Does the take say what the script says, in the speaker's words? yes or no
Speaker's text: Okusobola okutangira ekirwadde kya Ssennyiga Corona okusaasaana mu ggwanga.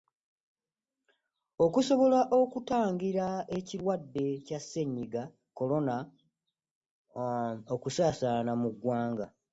yes